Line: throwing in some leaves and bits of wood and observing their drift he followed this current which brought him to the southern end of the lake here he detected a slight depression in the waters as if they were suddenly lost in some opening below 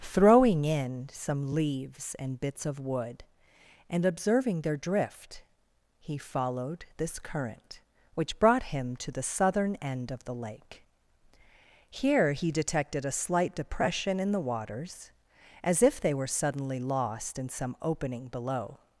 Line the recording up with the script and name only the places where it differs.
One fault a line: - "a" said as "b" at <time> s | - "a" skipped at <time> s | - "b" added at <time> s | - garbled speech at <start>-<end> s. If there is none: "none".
none